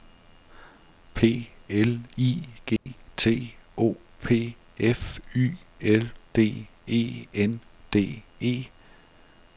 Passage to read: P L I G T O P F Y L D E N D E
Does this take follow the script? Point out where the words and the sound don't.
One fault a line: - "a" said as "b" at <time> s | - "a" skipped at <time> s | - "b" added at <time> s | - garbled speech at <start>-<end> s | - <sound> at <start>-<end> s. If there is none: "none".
- dropout at 2.8-2.9 s